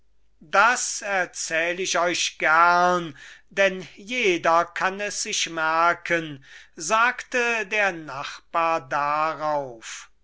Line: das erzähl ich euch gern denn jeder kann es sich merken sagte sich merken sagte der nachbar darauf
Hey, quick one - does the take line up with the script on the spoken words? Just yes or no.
no